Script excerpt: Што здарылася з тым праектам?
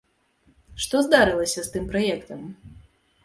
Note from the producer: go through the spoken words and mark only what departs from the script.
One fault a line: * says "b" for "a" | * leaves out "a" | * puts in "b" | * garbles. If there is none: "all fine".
all fine